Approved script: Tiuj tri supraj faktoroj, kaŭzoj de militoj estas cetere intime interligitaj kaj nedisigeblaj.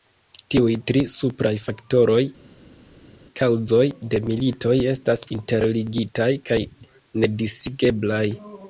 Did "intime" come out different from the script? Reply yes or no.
yes